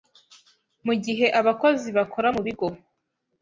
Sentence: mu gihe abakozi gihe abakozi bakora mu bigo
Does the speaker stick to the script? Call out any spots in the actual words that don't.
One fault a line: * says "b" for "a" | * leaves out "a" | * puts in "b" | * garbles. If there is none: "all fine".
* leaves out "gihe abakozi"